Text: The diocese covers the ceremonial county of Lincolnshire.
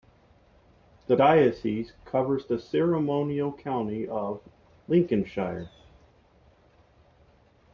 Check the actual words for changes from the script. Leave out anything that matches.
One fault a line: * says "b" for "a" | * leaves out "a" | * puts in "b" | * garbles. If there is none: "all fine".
all fine